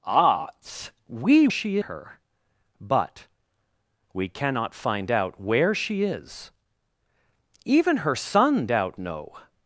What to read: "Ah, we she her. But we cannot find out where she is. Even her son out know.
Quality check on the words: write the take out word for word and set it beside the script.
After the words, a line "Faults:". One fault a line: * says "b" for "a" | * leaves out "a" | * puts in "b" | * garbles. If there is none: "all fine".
"Ah, we she her. But we cannot find out where she is. Even her son out know.
Faults:
all fine